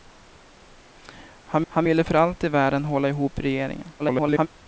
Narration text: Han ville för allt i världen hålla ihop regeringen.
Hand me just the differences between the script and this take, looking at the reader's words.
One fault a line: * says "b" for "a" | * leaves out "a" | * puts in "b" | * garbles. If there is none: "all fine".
* puts in "han"
* garbles